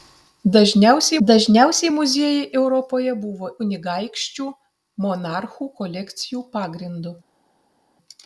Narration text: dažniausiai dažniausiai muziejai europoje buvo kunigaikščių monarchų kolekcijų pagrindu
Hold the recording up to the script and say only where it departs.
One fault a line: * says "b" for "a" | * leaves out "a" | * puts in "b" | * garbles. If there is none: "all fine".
all fine